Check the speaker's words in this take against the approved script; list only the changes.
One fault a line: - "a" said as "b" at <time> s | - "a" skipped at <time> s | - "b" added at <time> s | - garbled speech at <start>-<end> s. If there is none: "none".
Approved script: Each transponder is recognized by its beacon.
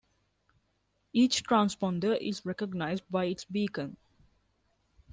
none